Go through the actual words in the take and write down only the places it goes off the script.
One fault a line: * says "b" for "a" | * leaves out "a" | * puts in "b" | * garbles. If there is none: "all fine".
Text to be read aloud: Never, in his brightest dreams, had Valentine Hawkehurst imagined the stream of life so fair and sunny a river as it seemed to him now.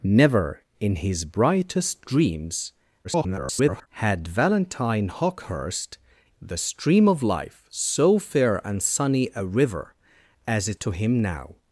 * garbles
* leaves out "imagined"
* leaves out "seemed"